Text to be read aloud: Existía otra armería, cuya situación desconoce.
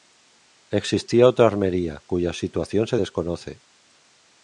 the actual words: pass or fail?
fail